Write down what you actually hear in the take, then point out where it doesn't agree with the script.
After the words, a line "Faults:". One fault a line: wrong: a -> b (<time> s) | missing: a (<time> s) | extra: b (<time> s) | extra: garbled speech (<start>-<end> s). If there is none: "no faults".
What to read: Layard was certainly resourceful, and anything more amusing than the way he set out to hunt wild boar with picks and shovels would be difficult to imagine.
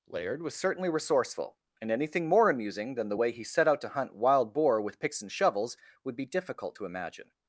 Layard was certainly resourceful, and anything more amusing than the way he set out to hunt wild boar with picks and shovels would be difficult to imagine.
Faults:
no faults